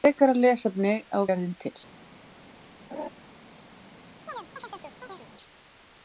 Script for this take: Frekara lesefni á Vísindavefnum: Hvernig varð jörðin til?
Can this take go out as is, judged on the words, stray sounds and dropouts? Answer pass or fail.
fail